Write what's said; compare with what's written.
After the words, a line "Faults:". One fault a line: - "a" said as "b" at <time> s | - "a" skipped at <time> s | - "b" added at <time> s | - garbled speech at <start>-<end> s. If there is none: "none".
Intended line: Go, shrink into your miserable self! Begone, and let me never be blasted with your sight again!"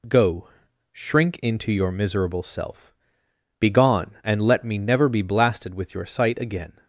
Go, shrink into your miserable self! Begone, and let me never be blasted with your sight again!"
Faults:
none